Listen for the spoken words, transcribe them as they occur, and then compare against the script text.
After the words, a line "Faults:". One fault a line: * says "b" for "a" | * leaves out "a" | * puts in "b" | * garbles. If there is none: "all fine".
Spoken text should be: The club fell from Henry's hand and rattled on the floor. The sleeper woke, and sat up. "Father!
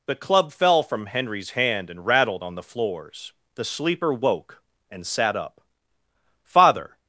The club fell from Henry's hand and rattled on the floors. The sleeper woke, and sat up. "Father!
Faults:
* says "floors" for "floor"